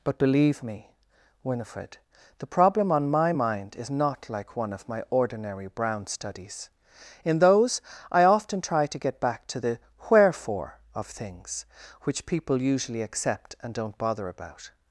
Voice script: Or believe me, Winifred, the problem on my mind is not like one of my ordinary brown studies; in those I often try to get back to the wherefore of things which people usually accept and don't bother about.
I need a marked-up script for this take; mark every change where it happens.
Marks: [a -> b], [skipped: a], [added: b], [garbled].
[Or -> But] believe me, Winifred, the problem on my mind is not like one of my ordinary brown studies; in those I often try to get back to the wherefore of things which people usually accept and don't bother about.